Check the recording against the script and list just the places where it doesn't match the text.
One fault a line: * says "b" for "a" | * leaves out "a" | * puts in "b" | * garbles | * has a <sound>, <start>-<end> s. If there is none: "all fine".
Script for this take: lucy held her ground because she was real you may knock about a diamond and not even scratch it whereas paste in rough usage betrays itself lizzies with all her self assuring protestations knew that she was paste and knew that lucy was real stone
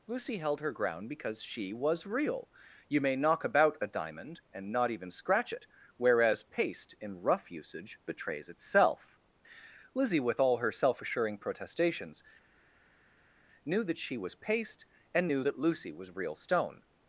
* says "lizzie" for "lizzies"